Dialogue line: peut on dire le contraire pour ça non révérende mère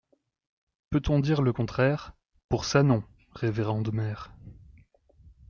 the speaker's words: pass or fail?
pass